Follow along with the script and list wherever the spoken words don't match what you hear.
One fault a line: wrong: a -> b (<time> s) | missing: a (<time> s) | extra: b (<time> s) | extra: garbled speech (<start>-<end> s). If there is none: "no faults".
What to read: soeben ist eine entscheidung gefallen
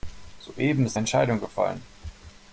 missing: eine (1.0 s)